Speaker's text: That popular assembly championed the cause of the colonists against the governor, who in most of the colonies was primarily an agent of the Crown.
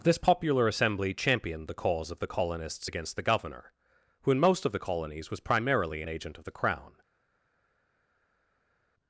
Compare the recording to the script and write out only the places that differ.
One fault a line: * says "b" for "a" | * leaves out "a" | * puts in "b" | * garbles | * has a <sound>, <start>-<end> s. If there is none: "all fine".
* says "This" for "That"